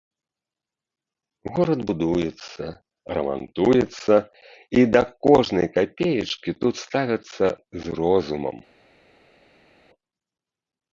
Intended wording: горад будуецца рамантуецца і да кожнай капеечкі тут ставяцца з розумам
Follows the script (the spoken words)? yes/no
yes